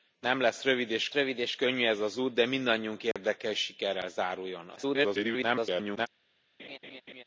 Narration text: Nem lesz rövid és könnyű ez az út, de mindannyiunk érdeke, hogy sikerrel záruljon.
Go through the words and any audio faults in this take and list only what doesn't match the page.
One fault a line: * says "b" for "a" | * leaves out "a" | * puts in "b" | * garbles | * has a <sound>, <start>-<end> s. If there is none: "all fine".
* puts in "rövid és"
* has a dropout, 3.1-3.2 s
* garbles
* has a laugh, 6.6-7.2 s